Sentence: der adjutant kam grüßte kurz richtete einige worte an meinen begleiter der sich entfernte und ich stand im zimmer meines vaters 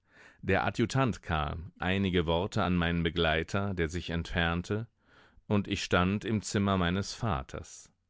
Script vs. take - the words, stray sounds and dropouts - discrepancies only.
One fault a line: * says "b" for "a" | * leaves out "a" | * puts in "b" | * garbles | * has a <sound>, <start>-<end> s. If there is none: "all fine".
* leaves out "grüßte kurz richtete"